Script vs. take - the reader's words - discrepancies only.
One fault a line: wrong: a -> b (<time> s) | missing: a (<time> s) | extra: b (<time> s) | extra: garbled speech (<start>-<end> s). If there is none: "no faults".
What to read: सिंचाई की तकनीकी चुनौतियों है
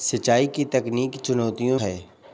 no faults